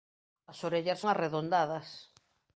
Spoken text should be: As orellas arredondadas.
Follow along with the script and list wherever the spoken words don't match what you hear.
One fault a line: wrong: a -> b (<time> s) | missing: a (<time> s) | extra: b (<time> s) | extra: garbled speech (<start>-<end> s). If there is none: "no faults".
no faults